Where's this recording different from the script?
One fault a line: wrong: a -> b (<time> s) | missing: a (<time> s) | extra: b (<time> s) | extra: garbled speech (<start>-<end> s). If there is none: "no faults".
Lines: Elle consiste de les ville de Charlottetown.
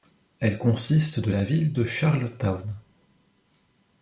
wrong: les -> la (1.3 s)